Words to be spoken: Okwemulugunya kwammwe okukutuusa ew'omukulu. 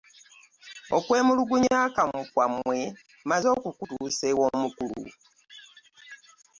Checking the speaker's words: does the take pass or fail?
fail